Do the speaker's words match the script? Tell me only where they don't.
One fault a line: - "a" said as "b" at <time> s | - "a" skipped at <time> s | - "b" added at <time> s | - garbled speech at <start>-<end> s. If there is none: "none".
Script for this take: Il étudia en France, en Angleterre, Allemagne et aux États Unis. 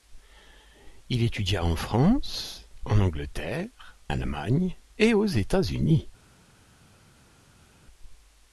none